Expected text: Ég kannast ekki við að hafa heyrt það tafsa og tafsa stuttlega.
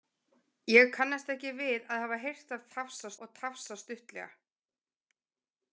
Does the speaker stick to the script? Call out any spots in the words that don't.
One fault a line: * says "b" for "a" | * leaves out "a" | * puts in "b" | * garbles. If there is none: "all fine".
all fine